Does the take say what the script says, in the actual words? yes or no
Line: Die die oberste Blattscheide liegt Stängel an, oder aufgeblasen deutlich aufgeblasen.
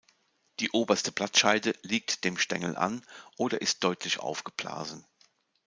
no